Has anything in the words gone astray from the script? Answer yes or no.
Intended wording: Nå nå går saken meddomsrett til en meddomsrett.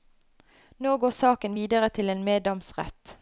yes